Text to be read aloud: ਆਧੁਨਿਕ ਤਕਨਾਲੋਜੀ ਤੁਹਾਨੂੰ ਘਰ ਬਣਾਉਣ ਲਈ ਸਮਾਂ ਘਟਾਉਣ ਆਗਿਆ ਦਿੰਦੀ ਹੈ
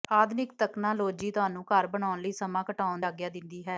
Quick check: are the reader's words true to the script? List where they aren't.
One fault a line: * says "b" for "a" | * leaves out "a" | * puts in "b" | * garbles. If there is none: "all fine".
all fine